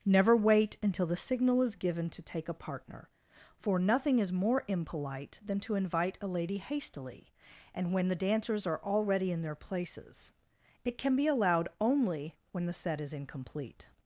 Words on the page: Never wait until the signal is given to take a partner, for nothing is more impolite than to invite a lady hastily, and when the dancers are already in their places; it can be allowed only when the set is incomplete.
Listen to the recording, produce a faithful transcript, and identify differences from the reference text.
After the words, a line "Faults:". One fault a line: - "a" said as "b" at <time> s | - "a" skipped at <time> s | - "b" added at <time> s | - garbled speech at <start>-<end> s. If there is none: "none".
Never wait until the signal is given to take a partner, for nothing is more impolite than to invite a lady hastily, and when the dancers are already in their places; it can be allowed only when the set is incomplete.
Faults:
none